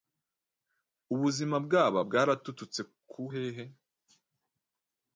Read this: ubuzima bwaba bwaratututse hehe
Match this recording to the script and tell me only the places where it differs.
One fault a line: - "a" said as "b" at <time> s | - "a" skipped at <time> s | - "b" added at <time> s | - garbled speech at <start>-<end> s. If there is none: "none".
- "ku" added at 3.1 s